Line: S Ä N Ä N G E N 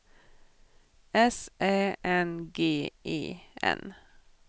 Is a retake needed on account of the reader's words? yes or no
yes